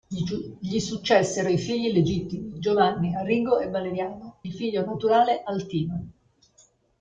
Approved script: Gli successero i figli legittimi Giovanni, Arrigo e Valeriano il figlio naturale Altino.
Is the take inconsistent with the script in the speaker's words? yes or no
no